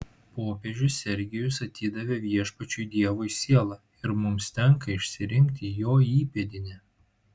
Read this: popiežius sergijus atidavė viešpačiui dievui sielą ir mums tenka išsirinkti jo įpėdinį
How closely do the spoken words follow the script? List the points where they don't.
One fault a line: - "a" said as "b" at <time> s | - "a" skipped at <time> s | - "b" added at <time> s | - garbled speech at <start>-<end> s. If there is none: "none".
none